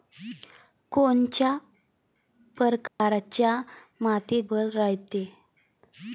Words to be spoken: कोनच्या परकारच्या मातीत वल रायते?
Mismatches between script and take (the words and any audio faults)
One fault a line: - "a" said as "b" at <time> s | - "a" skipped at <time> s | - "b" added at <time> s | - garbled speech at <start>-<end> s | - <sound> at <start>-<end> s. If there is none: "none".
- dropout at 2.9-3.0 s